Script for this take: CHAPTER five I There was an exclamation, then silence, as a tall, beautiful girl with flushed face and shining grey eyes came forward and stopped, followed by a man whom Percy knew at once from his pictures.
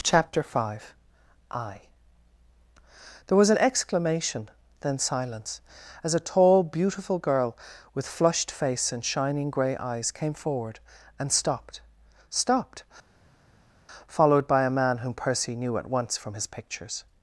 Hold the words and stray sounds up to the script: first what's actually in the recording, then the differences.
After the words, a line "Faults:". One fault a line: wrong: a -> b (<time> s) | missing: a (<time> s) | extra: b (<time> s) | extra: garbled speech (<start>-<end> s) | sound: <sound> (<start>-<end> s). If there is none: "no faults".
CHAPTER five I There was an exclamation, then silence, as a tall, beautiful girl with flushed face and shining grey eyes came forward and stopped stopped, followed by a man whom Percy knew at once from his pictures.
Faults:
extra: stopped (12.3 s)